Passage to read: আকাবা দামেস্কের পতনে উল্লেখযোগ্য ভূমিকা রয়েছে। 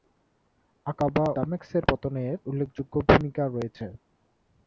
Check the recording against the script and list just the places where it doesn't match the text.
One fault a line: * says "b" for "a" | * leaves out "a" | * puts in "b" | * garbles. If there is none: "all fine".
all fine